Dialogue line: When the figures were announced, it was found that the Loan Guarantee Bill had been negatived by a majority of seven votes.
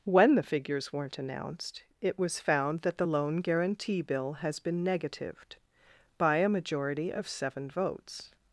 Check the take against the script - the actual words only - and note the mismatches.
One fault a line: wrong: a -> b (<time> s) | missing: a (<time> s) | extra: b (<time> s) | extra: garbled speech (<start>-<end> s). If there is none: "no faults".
wrong: were -> weren't (0.9 s)
wrong: had -> has (4.3 s)